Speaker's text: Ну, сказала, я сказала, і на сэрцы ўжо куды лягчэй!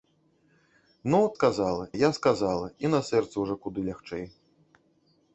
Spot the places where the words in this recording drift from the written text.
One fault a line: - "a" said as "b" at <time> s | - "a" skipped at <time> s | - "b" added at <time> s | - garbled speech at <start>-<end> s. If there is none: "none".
none